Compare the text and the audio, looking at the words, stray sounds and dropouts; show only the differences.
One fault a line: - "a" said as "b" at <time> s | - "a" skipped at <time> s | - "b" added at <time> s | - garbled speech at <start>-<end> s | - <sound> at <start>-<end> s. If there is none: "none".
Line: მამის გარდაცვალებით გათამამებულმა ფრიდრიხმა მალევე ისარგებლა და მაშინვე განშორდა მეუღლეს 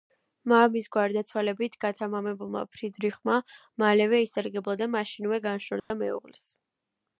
- dropout at 5.8-5.9 s